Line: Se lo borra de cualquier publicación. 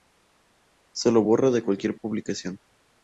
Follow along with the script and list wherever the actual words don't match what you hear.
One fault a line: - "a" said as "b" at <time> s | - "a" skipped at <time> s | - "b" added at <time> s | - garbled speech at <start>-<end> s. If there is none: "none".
none